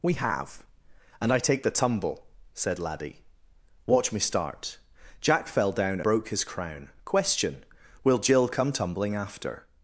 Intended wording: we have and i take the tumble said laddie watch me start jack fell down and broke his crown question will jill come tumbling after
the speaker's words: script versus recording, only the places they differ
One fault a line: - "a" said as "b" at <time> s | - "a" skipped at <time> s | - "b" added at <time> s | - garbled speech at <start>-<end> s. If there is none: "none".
- "and" skipped at 6.0 s